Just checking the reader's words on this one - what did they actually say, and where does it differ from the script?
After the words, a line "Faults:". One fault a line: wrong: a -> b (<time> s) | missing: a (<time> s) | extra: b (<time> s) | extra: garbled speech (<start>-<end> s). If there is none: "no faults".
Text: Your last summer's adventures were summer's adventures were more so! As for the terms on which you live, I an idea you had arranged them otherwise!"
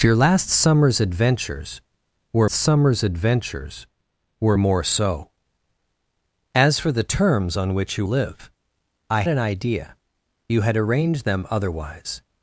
Your last summer's adventures were summer's adventures were more so! As for the terms on which you live, I an idea you had arranged them otherwise!"
Faults:
no faults